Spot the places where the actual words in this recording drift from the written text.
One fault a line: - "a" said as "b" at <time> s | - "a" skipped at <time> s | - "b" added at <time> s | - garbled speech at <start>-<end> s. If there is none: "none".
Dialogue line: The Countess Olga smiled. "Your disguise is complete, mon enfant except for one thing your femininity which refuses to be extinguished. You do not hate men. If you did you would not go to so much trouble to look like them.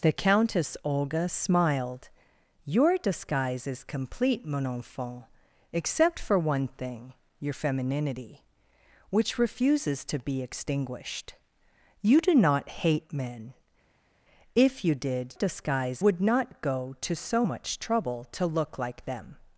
- "you" said as "disguise" at 15.3 s